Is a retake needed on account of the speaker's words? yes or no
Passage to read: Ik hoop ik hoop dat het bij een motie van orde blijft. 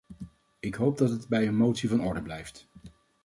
yes